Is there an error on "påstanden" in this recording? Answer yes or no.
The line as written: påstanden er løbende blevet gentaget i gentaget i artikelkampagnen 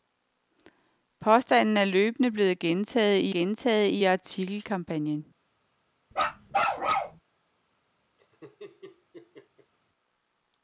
no